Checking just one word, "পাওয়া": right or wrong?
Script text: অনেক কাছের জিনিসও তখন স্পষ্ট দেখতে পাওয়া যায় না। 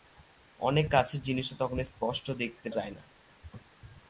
wrong